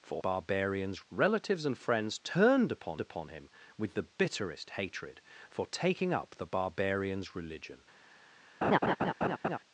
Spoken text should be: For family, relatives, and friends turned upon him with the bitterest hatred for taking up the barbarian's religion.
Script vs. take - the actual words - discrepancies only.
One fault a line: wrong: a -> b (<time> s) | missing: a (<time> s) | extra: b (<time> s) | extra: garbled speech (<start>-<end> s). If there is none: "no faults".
wrong: family -> barbarian's (0.2 s)
extra: upon (3.0 s)